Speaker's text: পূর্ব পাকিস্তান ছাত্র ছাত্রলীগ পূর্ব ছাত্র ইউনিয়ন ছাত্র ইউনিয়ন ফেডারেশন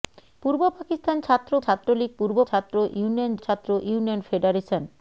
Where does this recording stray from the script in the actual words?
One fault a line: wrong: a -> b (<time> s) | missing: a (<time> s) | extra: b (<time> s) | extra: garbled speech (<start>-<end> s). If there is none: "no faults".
no faults